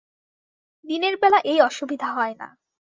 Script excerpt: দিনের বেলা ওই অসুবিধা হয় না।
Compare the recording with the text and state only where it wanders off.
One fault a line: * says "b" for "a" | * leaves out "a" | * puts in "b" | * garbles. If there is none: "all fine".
* says "এই" for "ওই"